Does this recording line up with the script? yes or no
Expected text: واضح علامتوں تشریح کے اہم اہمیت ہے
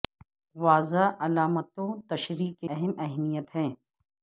yes